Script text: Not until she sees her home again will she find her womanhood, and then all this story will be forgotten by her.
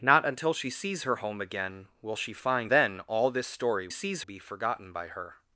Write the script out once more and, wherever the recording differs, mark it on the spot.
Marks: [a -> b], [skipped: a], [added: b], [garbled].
Not until she sees her home again will she find [skipped: her womanhood, and] then all this story [will -> sees] be forgotten by her.